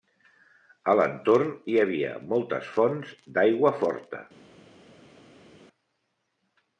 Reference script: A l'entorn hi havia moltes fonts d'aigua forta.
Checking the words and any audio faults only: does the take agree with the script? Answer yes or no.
yes